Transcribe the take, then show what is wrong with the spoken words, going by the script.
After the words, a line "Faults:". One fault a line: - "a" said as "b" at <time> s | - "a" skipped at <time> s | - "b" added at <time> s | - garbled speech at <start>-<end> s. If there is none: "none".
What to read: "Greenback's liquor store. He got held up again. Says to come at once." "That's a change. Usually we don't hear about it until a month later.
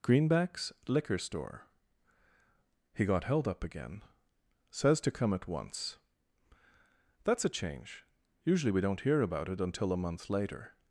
"Greenback's liquor store. He got held up again. Says to come at once." "That's a change. Usually we don't hear about it until a month later.
Faults:
none